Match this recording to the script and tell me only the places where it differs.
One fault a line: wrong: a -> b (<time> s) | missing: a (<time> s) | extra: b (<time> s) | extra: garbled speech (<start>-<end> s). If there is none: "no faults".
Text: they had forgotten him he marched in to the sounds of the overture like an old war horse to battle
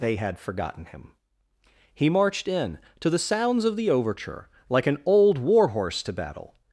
no faults